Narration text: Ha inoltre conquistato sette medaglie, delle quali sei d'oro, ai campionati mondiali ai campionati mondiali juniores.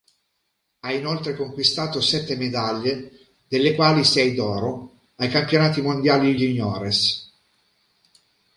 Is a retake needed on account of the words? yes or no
yes